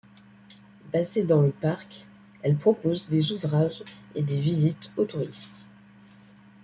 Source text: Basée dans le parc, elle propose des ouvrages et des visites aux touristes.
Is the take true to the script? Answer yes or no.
yes